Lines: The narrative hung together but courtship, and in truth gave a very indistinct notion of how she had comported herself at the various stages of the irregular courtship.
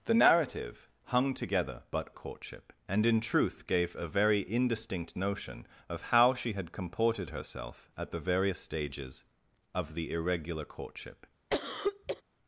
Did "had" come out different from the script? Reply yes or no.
no